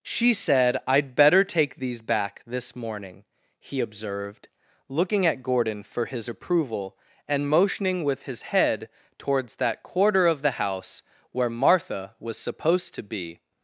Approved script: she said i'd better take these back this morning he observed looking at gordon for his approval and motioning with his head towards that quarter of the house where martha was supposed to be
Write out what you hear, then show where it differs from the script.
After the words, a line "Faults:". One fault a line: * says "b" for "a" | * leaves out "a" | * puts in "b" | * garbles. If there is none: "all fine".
she said i'd better take these back this morning he observed looking at gordon for his approval and motioning with his head towards that quarter of the house where martha was supposed to be
Faults:
all fine